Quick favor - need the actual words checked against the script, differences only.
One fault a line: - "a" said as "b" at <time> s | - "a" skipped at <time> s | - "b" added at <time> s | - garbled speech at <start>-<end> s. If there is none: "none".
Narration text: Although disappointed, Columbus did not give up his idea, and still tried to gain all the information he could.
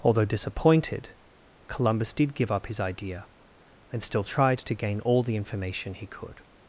- "not" skipped at 2.3 s